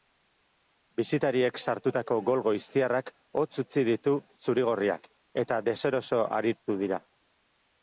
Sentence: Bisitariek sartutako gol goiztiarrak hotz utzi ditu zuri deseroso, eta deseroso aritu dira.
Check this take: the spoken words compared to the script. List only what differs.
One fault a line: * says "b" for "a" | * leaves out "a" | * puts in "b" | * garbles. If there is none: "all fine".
* says "gorriak" for "deseroso"